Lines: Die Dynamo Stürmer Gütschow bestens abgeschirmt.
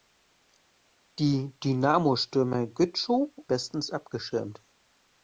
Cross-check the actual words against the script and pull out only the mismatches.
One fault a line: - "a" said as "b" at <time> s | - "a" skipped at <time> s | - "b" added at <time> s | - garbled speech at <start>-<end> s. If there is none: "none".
none